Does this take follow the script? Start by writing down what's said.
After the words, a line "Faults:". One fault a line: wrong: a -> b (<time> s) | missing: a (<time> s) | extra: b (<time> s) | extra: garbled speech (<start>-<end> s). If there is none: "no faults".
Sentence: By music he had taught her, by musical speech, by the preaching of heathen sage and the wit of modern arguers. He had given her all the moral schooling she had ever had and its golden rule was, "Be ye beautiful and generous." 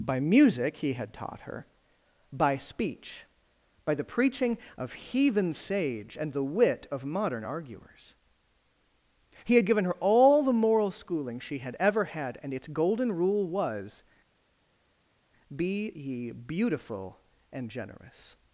By music he had taught her, by speech, by the preaching of heathen sage and the wit of modern arguers. He had given her all the moral schooling she had ever had and its golden rule was, "Be ye beautiful and generous."
Faults:
missing: musical (2.6 s)